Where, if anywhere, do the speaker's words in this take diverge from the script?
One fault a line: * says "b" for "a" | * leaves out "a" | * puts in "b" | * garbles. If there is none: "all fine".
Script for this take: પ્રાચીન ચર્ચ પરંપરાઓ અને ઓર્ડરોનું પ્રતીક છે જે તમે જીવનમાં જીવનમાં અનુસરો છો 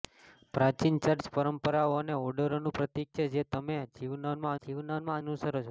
all fine